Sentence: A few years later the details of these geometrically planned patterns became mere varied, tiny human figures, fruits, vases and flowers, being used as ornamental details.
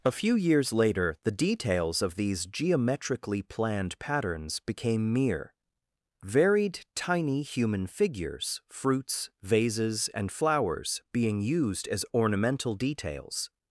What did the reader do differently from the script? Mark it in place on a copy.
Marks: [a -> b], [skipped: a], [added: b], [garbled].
A few years later the details of these geometrically planned patterns became mere varied, tiny human figures, fruits, vases and flowers, being used as ornamental details.